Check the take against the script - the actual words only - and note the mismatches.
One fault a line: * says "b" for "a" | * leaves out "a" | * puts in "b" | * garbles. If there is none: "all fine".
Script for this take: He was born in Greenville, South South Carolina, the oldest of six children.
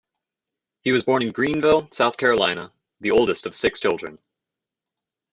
* leaves out "South"